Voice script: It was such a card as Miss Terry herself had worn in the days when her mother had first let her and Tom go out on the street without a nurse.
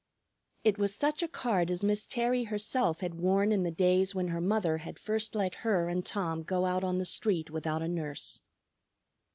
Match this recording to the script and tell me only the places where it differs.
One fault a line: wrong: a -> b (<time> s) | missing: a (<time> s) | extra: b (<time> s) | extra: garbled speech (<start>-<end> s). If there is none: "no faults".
no faults